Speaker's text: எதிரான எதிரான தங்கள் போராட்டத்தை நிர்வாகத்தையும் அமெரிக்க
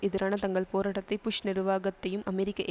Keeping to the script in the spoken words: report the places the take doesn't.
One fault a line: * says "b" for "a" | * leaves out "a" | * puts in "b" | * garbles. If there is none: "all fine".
* leaves out "எதிரான"
* puts in "புஷ்"